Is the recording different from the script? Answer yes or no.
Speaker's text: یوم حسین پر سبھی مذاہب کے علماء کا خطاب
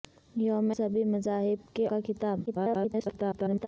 yes